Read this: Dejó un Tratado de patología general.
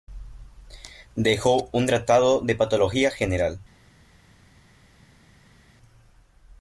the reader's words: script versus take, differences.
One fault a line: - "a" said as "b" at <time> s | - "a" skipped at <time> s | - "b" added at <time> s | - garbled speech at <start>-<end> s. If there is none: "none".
none